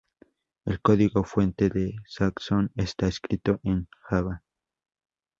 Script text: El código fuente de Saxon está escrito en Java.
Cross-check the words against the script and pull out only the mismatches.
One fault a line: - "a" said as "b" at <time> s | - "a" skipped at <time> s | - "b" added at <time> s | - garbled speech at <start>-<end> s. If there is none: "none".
none